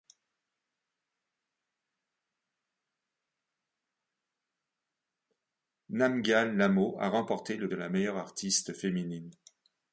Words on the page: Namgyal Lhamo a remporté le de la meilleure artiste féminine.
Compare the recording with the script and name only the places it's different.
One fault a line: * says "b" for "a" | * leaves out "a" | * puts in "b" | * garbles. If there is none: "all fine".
all fine